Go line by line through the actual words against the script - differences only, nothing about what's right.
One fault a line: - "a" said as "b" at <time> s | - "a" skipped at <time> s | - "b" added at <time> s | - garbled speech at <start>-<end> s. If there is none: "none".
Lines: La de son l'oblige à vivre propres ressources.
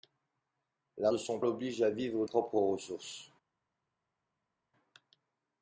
none